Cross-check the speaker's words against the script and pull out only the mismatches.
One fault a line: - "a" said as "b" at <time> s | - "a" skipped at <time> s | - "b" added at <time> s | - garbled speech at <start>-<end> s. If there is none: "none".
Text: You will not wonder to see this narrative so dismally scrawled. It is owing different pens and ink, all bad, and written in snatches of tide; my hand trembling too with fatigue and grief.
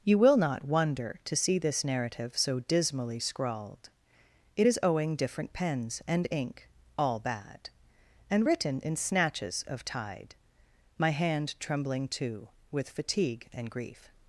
none